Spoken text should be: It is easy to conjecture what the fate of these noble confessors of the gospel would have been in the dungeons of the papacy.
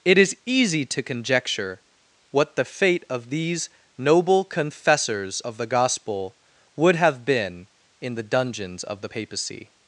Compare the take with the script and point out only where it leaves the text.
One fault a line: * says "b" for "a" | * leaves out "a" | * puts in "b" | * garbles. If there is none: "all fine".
all fine